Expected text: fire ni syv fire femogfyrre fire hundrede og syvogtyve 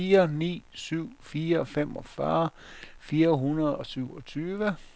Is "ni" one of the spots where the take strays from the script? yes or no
no